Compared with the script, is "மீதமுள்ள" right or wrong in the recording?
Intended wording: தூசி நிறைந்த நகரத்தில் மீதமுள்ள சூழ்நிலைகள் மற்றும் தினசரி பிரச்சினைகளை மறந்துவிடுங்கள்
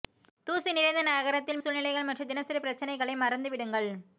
wrong